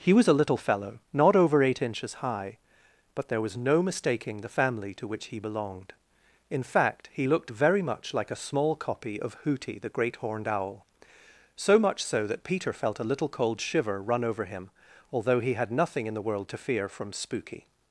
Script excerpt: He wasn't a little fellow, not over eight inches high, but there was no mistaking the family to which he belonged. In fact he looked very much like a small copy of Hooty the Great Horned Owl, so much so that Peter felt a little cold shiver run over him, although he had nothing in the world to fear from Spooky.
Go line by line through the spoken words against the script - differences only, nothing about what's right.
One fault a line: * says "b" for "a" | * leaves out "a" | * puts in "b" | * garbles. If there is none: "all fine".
* says "was" for "wasn't"